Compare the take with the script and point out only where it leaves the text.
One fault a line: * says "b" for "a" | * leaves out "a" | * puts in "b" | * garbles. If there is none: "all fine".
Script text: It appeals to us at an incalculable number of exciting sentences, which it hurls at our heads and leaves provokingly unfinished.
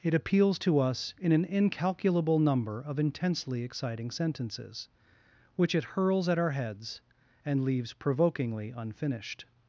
* says "in" for "at"
* puts in "intensely"